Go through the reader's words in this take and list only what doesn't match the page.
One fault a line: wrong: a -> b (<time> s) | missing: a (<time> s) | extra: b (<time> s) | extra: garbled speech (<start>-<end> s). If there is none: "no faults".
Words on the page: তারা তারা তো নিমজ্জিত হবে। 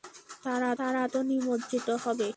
no faults